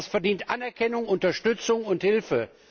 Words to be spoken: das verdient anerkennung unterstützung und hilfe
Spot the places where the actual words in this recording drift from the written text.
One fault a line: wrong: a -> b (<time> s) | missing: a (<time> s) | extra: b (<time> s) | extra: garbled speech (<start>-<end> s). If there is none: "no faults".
no faults